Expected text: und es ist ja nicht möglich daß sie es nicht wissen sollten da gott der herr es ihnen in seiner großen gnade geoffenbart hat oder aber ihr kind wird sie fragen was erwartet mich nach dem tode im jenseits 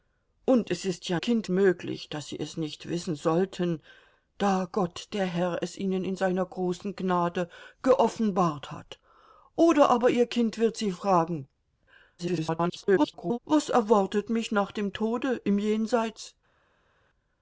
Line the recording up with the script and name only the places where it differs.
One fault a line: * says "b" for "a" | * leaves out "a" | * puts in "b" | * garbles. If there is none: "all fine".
* says "kind" for "nicht"
* garbles